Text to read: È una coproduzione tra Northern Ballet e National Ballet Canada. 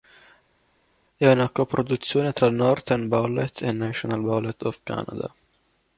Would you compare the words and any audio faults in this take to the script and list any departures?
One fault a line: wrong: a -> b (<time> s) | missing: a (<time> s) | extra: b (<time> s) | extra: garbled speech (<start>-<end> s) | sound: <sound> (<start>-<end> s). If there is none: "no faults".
extra: of (4.6 s)